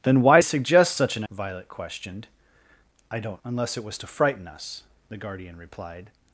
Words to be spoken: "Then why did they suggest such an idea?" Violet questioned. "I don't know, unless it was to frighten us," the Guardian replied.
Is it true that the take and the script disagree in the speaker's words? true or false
true